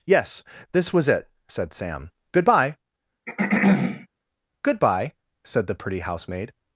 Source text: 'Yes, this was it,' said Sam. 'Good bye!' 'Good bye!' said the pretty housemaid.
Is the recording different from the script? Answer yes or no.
no